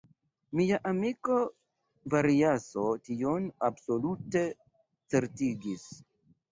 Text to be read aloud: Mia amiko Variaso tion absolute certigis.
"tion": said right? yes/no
yes